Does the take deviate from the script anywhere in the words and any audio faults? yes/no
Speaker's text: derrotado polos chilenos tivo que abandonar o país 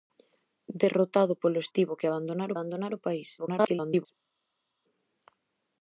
yes